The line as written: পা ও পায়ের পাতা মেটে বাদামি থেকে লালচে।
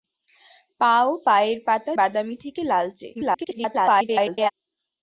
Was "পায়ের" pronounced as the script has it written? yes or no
yes